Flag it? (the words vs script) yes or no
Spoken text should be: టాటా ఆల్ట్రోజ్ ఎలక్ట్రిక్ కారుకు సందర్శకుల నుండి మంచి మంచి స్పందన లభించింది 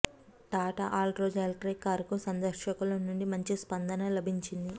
yes